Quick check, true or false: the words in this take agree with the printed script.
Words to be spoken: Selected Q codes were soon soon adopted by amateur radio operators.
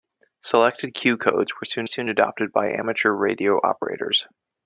true